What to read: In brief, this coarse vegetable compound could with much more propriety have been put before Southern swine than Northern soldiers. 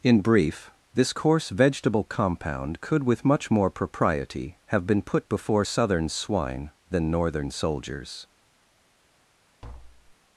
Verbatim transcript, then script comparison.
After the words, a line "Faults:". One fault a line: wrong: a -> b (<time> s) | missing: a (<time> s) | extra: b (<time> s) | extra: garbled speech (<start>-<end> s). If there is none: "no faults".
In brief, this coarse vegetable compound could with much more propriety have been put before Southern swine than Northern soldiers.
Faults:
no faults